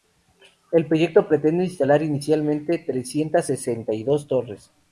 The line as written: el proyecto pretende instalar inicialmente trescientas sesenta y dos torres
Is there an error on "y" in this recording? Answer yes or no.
no